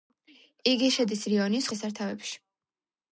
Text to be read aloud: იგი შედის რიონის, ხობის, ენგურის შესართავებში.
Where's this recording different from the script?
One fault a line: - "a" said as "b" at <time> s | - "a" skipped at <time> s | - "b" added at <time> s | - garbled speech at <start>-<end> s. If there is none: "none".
- "ხობის ენგურის" skipped at 1.7 s